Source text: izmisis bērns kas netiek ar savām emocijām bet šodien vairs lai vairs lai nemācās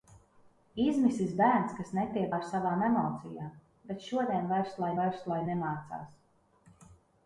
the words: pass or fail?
pass